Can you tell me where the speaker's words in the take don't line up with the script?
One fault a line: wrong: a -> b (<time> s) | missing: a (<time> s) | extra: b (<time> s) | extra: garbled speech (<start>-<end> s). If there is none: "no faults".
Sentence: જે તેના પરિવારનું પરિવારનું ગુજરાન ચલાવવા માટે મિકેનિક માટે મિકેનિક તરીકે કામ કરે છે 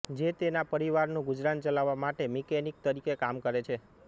missing: પરિવારનું (1.3 s)
missing: માટે મિકેનિક (2.8 s)